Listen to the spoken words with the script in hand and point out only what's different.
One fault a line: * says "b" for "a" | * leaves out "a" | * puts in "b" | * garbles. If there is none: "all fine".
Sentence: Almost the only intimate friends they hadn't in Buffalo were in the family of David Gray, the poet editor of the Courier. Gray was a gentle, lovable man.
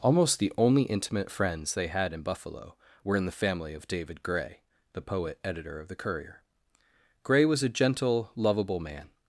* says "had" for "hadn't"